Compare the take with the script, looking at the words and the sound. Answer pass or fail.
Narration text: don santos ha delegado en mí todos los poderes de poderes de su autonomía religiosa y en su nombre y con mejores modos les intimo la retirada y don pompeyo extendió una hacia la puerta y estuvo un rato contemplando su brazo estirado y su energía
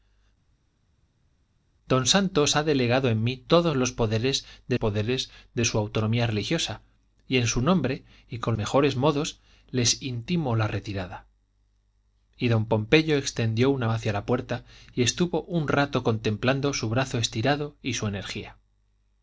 pass